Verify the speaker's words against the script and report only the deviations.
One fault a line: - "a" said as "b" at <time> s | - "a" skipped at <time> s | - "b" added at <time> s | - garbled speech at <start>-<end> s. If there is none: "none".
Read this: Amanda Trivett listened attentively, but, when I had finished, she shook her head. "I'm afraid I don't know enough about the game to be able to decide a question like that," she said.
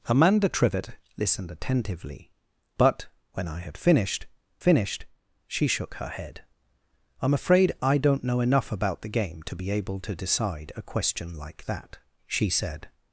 - "finished" added at 4.6 s